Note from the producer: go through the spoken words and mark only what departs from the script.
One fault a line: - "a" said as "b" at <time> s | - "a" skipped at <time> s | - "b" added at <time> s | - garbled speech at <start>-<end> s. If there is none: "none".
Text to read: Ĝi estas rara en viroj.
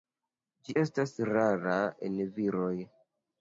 none